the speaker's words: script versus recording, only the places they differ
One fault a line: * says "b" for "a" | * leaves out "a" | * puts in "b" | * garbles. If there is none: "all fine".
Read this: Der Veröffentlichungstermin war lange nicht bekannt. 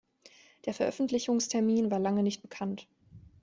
all fine